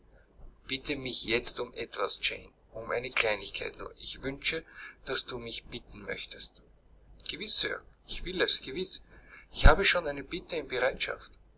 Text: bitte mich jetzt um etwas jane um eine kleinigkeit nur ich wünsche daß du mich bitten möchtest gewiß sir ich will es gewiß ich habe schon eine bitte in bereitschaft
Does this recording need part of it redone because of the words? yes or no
no